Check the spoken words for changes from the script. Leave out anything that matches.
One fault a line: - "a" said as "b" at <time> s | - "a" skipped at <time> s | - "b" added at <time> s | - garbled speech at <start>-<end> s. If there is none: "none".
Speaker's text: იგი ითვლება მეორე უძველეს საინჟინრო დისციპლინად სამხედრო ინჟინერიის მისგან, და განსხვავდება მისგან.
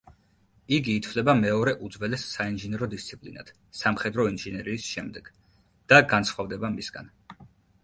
- "მისგან" said as "შემდეგ" at 5.0 s